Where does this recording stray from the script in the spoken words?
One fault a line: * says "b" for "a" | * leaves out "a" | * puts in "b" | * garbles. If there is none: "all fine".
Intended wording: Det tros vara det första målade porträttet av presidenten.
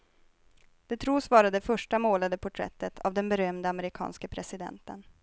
* puts in "den berömde amerikanske"